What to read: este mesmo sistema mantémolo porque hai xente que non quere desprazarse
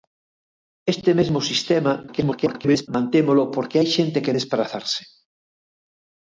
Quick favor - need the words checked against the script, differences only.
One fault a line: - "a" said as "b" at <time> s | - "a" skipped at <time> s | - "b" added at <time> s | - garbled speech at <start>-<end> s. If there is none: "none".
- garbled speech at 2.1-2.9 s
- "non quere" skipped at 4.4 s